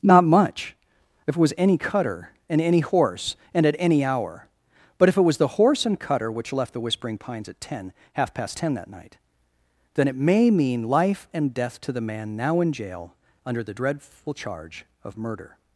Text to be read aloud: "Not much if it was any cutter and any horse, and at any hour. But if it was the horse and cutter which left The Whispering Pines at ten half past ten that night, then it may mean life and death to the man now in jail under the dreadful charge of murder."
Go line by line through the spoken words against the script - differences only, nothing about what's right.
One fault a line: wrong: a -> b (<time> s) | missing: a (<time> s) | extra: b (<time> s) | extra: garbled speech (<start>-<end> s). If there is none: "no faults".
no faults